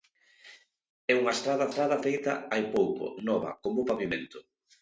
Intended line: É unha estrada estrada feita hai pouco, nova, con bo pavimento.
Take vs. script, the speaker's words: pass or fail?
pass